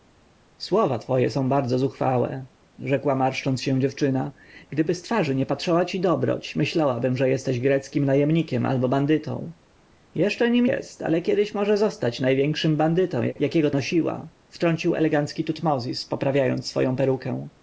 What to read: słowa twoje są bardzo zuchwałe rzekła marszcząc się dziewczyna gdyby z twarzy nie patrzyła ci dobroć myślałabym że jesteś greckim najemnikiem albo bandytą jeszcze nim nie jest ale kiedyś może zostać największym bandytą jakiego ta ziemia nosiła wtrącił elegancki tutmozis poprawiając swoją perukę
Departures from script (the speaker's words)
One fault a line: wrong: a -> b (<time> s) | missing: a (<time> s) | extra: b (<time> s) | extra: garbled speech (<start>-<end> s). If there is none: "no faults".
missing: nie (10.7 s)
missing: ta ziemia (13.7 s)